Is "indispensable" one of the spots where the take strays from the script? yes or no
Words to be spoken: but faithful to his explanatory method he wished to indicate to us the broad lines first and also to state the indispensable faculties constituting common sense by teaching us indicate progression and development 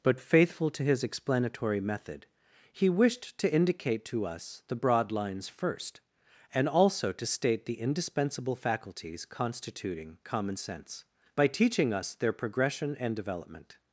no